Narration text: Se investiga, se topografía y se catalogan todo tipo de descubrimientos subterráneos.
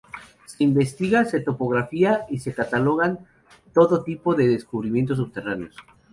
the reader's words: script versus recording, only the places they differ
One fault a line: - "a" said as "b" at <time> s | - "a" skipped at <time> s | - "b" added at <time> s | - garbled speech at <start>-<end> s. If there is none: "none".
none